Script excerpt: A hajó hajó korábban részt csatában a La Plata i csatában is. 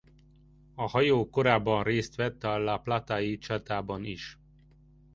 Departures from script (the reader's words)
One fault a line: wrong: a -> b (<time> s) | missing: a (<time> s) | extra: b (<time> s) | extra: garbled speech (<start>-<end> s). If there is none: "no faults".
missing: hajó (1.3 s)
wrong: csatában -> vett (2.1 s)